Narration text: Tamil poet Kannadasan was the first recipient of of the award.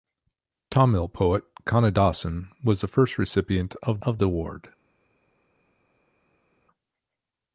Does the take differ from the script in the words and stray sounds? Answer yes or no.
no